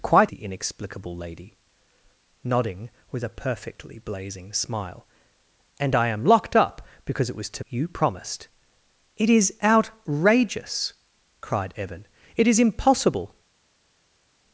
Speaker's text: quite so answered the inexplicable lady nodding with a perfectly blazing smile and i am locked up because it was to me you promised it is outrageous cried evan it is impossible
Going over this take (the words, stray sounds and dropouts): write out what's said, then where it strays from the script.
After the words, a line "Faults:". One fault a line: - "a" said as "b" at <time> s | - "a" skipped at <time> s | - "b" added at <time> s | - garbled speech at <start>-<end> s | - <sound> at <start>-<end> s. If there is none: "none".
quite the inexplicable lady nodding with a perfectly blazing smile and i am locked up because it was to you promised it is outrageous cried evan it is impossible
Faults:
- "so answered" skipped at 0.3 s
- "me" skipped at 7.6 s